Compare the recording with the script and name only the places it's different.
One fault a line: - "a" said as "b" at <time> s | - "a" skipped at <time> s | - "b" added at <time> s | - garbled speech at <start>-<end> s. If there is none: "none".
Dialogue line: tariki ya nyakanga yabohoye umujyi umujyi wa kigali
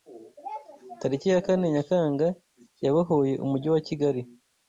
- "kane" added at 1.4 s
- "umujyi" skipped at 3.7 s